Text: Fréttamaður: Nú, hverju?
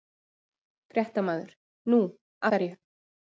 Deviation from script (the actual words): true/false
false